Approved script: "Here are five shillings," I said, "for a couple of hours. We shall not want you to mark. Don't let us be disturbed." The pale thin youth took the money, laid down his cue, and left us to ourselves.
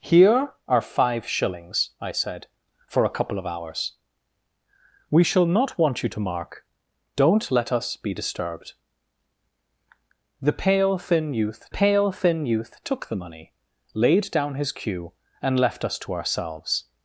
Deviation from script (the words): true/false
true